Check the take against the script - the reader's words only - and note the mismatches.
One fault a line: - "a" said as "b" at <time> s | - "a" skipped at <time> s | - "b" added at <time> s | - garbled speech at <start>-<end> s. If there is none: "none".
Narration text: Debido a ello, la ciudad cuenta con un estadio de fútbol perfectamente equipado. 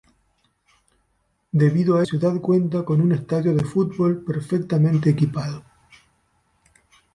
- "ello la" skipped at 2.1 s